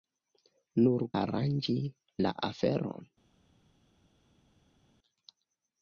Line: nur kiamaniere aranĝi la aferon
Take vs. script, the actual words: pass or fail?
fail